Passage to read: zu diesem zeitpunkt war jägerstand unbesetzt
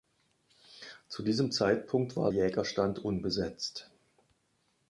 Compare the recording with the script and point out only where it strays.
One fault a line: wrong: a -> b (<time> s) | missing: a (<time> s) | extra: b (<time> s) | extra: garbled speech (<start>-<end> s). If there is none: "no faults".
no faults